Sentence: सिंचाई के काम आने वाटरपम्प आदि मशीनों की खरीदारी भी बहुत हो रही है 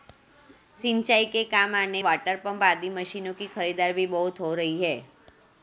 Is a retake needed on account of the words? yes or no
no